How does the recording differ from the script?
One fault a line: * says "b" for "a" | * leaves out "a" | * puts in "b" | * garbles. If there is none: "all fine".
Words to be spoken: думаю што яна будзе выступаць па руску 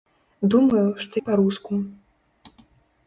* leaves out "яна будзе выступаць"